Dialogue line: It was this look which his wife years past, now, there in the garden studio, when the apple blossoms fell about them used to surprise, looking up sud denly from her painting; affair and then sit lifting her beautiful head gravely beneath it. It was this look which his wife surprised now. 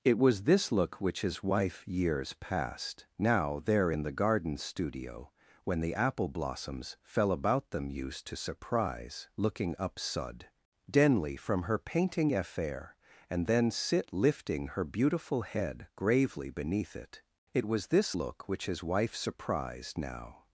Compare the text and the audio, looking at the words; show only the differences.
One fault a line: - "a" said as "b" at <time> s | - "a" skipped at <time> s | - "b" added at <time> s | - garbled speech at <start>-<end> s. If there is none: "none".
none